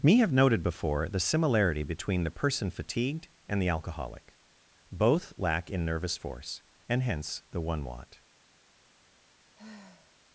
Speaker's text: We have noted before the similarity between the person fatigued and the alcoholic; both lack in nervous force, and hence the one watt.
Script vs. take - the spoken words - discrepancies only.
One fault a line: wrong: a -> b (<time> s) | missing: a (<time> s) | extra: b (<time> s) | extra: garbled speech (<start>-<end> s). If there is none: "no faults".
wrong: We -> Me (0.0 s)